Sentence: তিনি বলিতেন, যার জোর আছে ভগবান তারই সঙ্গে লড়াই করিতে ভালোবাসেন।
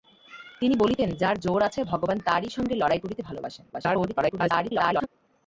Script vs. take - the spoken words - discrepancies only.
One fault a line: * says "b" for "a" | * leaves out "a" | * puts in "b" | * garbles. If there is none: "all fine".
* garbles